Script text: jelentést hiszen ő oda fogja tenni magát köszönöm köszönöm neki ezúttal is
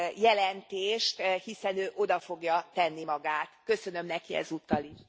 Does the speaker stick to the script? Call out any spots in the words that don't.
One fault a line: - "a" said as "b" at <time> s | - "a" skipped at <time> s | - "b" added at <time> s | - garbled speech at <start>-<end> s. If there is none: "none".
- "köszönöm" skipped at 4.1 s